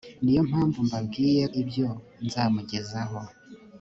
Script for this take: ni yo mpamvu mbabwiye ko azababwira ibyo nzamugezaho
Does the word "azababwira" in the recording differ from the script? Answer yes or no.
yes